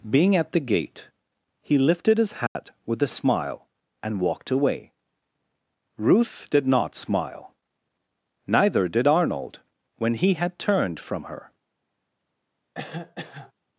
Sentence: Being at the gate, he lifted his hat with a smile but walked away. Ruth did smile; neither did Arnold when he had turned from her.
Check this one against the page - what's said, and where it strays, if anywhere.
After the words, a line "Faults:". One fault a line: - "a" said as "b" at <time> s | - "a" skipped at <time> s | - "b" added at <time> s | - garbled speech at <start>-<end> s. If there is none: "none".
Being at the gate, he lifted his hat with a smile and walked away. Ruth did not smile; neither did Arnold when he had turned from her.
Faults:
- "but" said as "and" at 4.0 s
- "not" added at 6.7 s